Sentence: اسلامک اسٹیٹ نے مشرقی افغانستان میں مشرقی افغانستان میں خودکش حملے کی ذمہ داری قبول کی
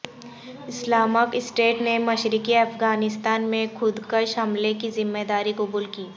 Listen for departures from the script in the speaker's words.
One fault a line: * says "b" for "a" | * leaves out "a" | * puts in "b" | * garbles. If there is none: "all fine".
* leaves out "مشرقی افغانستان میں"